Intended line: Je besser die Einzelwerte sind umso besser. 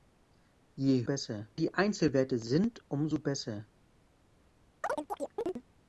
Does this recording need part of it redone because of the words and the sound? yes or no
yes